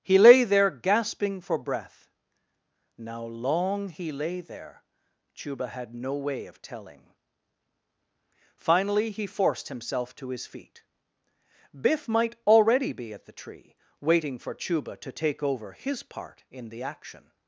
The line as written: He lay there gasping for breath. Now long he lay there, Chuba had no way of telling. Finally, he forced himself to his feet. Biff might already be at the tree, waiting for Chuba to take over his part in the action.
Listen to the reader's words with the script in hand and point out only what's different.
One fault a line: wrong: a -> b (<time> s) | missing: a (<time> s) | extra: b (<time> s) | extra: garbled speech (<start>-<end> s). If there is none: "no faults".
no faults